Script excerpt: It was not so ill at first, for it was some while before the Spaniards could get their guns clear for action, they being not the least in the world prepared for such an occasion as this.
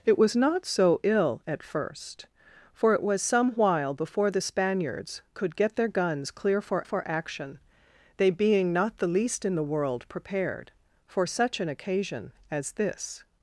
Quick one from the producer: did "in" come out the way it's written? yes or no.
yes